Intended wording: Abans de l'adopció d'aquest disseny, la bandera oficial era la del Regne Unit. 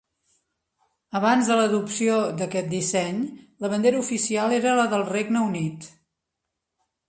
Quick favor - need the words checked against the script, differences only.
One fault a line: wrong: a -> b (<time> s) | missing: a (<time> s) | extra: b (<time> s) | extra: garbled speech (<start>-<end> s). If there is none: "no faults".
no faults